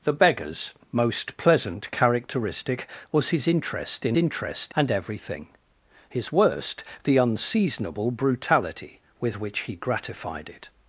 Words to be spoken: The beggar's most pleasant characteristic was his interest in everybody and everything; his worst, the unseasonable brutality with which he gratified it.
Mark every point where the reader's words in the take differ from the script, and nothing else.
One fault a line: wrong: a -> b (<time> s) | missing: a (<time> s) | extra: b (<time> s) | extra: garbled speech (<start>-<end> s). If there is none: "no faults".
wrong: everybody -> interest (4.1 s)